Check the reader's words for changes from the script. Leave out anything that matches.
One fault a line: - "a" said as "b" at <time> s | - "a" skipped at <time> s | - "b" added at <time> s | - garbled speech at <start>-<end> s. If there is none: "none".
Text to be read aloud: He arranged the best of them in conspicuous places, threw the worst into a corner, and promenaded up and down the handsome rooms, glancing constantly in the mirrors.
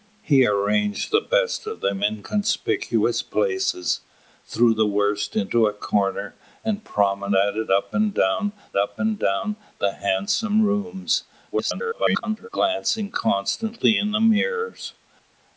- "up and down" added at 8.8 s
- garbled speech at 11.5-12.5 s